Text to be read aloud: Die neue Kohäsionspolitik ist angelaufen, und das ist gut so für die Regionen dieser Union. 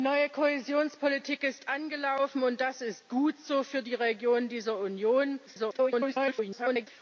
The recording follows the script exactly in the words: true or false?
false